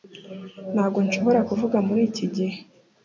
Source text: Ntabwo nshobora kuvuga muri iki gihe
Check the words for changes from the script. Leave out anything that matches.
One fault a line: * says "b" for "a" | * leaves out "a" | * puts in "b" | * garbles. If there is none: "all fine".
all fine